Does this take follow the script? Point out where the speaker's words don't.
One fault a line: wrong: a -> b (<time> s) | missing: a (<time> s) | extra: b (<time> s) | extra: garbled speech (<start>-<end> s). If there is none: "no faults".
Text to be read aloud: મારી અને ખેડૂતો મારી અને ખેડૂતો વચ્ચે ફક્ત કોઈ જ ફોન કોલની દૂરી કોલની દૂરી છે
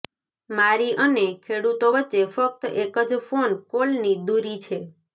missing: મારી અને ખેડૂતો (1.9 s)
wrong: કોઈ -> એક (2.8 s)
missing: કોલની દૂરી (4.6 s)